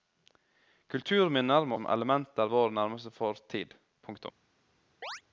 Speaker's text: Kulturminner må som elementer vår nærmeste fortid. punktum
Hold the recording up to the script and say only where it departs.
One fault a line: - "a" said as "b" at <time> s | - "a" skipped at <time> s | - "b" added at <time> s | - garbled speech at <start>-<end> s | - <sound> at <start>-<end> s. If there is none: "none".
- chirp at 5.0-5.2 s